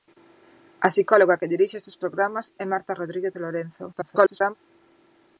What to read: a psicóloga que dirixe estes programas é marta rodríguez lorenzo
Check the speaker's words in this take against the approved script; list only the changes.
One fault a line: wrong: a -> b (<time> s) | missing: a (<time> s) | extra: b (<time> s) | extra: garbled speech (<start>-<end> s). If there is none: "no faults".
extra: garbled speech (3.9-4.5 s)